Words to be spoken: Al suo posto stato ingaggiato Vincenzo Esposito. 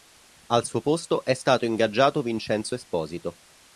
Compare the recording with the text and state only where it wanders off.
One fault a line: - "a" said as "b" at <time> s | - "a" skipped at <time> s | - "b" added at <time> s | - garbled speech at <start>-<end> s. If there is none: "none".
- "è" added at 1.2 s